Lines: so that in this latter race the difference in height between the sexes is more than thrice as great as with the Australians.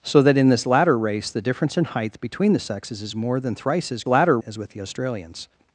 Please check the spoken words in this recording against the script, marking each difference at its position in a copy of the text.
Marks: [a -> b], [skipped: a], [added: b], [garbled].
so that in this latter race the difference in height between the sexes is more than thrice as [great -> latter] as with the Australians.